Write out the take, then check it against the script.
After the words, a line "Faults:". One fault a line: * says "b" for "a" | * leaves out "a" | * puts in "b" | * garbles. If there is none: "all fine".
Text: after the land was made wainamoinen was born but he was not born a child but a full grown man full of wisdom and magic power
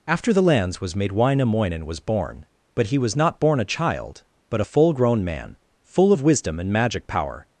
after the lands was made wainamoinen was born but he was not born a child but a full grown man full of wisdom and magic power
Faults:
* says "lands" for "land"